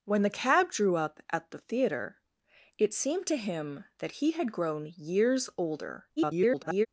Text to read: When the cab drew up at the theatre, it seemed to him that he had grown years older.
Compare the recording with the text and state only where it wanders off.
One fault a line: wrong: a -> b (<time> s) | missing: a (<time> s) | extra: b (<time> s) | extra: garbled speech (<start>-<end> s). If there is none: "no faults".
extra: garbled speech (6.2-6.9 s)